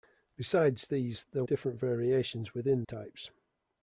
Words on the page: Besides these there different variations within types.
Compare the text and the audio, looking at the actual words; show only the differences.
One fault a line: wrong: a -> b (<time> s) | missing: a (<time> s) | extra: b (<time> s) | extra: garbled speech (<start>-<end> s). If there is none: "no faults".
no faults